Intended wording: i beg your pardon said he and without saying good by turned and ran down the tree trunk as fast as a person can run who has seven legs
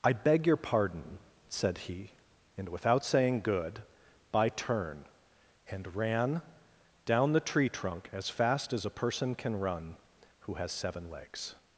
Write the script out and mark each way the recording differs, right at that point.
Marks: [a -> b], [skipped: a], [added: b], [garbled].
i beg your pardon said he and without saying good by [turned -> turn] and ran down the tree trunk as fast as a person can run who has seven legs